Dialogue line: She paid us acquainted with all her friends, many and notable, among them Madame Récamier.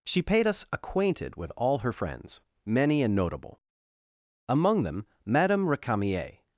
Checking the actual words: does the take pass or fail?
pass